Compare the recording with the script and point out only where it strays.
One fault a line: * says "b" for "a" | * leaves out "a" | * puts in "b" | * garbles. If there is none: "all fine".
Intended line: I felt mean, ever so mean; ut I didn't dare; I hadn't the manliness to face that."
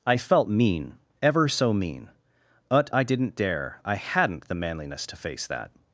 * says "but" for "ut"